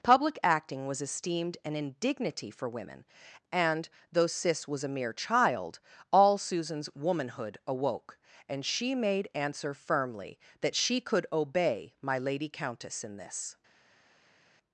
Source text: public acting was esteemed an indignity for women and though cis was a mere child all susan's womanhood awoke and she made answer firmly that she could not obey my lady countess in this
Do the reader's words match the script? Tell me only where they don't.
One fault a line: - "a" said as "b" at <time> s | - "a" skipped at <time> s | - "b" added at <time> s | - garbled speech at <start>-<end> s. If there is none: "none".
- "not" skipped at 11.3 s